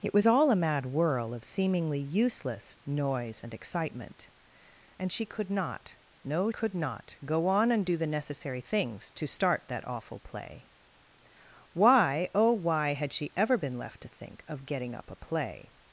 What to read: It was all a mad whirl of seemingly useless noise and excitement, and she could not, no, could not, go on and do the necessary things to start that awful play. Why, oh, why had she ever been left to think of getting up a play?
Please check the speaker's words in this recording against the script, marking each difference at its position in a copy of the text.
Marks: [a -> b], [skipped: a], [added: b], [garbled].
It was all a mad whirl of seemingly useless noise and excitement, and she could not, no, could not, go on and do the necessary things to start that awful play. Why, oh, why had she ever been left to think of getting up a play?